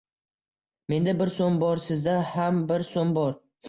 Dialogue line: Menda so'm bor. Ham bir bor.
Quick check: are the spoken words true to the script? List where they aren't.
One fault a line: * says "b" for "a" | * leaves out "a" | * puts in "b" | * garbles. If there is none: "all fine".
* puts in "bir"
* puts in "Sizda"
* puts in "so'm"